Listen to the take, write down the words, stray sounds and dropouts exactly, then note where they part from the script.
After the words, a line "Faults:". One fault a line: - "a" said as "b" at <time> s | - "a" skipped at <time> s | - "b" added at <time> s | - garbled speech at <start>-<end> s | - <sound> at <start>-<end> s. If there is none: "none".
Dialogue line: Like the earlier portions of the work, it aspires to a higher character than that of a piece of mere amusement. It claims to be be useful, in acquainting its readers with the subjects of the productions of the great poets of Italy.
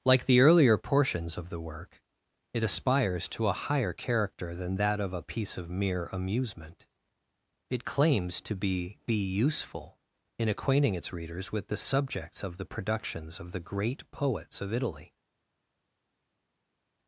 Like the earlier portions of the work, it aspires to a higher character than that of a piece of mere amusement. It claims to be be useful, in acquainting its readers with the subjects of the productions of the great poets of Italy.
Faults:
none